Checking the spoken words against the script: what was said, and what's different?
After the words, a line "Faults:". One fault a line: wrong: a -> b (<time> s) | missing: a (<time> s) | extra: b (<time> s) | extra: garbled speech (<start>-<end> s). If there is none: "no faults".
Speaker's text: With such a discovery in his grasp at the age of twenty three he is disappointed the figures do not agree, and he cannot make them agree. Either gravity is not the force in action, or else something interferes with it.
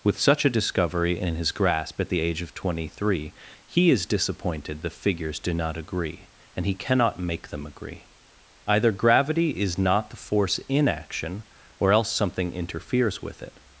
With such a discovery in his grasp at the age of twenty three he is disappointed the figures do not agree, and he cannot make them agree. Either gravity is not the force in action, or else something interferes with it.
Faults:
no faults